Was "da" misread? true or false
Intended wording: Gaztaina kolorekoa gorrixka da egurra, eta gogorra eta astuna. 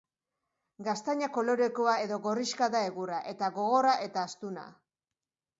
false